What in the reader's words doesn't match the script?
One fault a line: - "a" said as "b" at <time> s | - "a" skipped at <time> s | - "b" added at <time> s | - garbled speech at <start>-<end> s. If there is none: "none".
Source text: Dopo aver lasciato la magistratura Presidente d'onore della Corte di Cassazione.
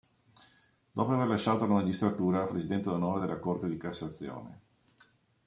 none